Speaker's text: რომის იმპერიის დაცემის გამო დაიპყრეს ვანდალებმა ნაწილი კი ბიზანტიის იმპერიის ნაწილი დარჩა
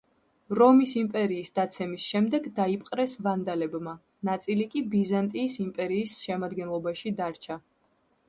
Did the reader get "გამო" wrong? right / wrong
wrong